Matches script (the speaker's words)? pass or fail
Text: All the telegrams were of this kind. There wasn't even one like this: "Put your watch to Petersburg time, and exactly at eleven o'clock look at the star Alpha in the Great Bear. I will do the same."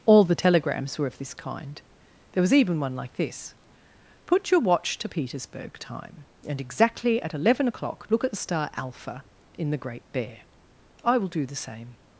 fail